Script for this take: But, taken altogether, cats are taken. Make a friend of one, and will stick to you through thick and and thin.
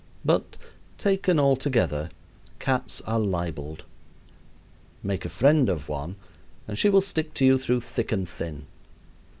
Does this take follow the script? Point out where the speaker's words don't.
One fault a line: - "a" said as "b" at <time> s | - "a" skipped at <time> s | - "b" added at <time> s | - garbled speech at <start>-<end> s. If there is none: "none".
- "taken" said as "libeled" at 3.2 s
- "she" added at 6.8 s
- "and" skipped at 8.3 s